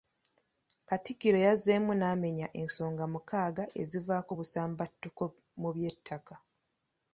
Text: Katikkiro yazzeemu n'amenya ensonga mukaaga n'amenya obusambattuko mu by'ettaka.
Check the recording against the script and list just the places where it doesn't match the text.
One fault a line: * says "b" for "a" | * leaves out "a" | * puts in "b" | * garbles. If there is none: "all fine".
* says "ezivaako" for "n'amenya"